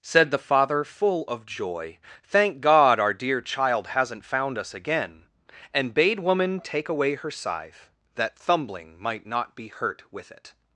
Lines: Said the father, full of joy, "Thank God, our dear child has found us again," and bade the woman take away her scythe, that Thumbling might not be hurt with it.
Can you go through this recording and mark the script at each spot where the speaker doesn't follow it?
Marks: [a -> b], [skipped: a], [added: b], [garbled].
Said the father, full of joy, "Thank God, our dear child [has -> hasn't] found us again," and bade [skipped: the] woman take away her scythe, that Thumbling might not be hurt with it.